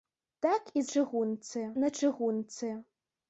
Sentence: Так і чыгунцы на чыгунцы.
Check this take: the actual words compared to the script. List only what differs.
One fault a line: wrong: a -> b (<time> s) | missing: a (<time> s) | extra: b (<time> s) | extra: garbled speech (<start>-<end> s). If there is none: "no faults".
no faults